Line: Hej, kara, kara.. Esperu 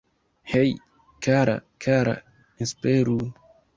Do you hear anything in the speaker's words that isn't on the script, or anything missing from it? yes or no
no